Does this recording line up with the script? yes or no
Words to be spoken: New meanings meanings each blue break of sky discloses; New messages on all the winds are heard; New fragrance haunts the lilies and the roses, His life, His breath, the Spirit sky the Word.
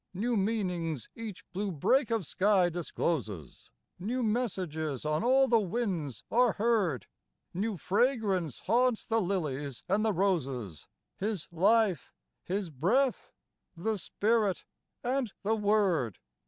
no